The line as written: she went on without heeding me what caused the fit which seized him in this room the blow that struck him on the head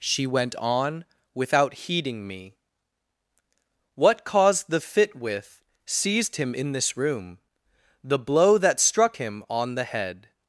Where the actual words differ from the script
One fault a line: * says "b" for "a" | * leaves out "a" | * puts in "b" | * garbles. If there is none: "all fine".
* says "with" for "which"